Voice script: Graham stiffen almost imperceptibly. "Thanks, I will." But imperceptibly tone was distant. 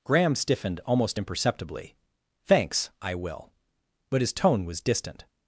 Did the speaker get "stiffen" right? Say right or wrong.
wrong